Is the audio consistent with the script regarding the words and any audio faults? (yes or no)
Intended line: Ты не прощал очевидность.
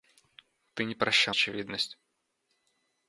yes